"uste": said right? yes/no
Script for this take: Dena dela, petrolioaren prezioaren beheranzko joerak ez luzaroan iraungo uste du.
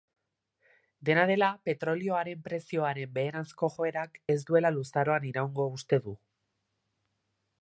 yes